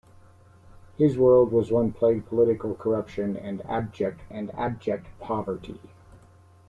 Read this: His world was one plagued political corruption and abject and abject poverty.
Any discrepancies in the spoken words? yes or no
no